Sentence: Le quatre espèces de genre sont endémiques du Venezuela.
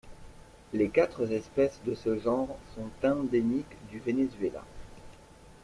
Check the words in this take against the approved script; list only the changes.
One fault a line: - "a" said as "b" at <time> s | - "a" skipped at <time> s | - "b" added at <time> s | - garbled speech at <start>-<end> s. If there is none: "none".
- "Le" said as "Les" at 0.7 s
- "ce" added at 2.0 s